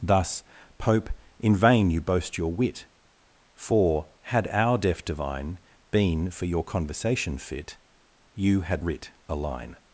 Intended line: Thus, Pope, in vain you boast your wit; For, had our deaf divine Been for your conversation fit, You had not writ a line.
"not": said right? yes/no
no